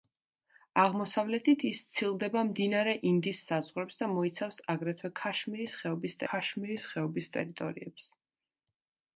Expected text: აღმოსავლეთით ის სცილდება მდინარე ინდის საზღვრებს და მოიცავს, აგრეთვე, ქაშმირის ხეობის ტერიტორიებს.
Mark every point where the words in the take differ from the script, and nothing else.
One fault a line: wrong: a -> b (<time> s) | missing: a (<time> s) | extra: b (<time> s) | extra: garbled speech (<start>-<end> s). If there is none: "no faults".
extra: ქაშმირის ხეობის (6.3 s)